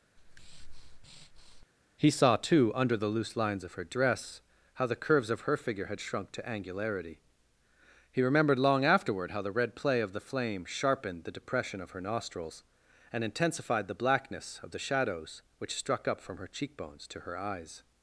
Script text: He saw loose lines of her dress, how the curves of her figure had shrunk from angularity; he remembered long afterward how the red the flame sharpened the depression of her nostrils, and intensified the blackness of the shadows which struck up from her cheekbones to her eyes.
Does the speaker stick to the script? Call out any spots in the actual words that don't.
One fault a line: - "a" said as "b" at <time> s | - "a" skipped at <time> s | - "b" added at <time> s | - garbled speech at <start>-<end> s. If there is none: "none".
- "too under the" added at 2.4 s
- "from" said as "to" at 6.3 s
- "play of" added at 9.7 s